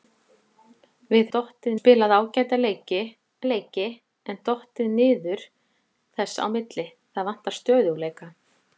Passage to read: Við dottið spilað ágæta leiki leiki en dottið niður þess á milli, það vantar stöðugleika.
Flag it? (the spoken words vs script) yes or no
no